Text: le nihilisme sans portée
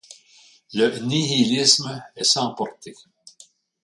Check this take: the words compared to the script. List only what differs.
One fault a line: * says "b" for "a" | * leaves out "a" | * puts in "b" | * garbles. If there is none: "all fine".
* puts in "est"